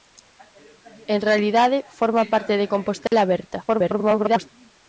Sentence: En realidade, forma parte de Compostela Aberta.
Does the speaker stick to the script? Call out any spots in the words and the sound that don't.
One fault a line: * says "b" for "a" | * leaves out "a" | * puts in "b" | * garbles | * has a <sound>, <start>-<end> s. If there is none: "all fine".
* has a dropout, 3.1-3.1 s
* garbles